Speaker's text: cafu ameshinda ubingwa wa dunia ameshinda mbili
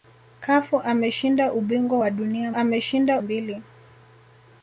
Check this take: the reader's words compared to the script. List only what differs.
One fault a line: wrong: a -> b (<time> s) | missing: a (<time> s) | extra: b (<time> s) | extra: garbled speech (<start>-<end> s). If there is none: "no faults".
no faults